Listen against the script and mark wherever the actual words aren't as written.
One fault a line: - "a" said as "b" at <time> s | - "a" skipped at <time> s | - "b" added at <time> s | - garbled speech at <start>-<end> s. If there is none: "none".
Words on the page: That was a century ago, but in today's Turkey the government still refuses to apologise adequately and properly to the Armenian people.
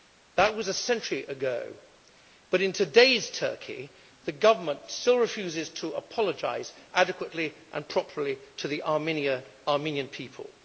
none